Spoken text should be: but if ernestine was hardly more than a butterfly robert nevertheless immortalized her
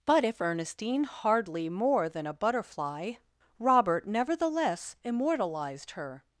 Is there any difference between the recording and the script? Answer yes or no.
yes